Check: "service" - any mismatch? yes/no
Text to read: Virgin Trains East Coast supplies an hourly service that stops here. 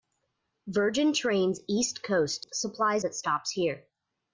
yes